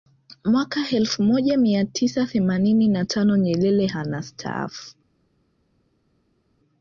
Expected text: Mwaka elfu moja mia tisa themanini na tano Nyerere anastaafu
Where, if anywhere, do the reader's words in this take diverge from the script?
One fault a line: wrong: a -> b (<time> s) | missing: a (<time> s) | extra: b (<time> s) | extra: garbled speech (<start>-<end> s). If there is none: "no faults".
no faults